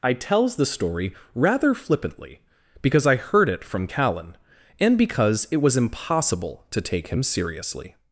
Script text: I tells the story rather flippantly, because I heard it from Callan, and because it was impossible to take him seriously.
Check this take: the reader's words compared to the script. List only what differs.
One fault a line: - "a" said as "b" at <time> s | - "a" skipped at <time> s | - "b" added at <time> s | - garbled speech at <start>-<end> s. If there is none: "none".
none